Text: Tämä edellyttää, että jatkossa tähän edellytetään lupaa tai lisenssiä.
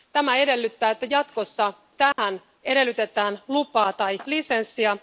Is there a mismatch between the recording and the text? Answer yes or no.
no